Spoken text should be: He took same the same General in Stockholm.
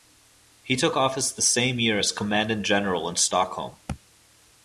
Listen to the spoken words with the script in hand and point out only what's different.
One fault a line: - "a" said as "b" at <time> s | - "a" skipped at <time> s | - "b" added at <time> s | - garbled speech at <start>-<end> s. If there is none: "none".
- "same" said as "office" at 1.0 s
- "year as Commandant" added at 1.8 s